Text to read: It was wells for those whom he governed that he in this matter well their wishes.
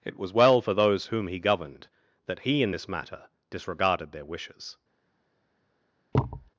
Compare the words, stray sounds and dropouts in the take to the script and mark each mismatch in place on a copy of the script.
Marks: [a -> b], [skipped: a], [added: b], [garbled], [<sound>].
It was [wells -> well] for those whom he governed that he in this matter [well -> disregarded] their wishes. [thud]